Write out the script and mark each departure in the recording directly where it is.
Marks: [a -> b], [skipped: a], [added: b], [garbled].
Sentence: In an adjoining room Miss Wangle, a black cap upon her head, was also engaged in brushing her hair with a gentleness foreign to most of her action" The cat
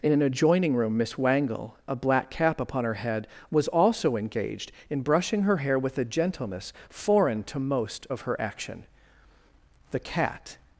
In an adjoining room Miss Wangle, a black cap upon her head, was also engaged in brushing her hair with a gentleness foreign to most of her action" The cat